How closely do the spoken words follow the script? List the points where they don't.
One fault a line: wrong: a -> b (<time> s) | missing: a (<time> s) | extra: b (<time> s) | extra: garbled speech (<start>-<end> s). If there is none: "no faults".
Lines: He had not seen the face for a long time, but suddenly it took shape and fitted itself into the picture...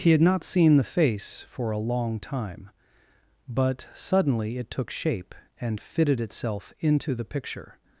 no faults